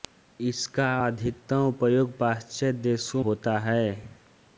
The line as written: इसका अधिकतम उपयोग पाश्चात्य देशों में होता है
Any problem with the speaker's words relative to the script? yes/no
yes